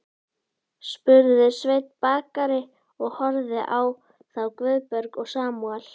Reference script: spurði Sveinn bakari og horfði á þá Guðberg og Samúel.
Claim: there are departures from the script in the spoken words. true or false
false